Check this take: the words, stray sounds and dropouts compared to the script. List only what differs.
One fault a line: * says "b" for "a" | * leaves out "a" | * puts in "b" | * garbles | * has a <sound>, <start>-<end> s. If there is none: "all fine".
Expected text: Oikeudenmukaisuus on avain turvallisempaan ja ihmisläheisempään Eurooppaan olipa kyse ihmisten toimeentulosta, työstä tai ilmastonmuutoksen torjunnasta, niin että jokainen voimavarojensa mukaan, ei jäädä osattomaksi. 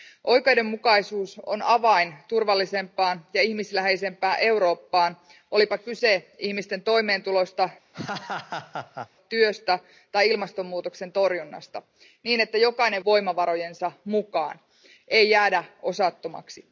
* has a laugh, 7.9-9.1 s